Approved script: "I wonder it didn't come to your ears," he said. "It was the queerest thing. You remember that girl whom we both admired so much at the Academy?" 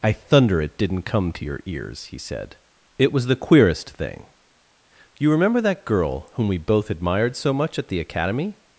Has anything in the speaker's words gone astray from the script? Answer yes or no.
yes